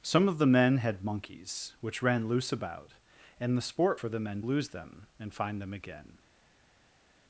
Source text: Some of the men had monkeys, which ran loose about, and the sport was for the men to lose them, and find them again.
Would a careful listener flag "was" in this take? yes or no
yes